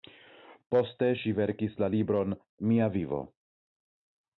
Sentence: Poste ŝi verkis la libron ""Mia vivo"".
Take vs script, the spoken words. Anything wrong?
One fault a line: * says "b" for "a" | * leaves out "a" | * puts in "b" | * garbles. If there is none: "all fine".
all fine